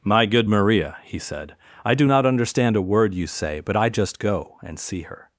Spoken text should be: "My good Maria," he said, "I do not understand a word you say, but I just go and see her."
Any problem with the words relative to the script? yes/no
no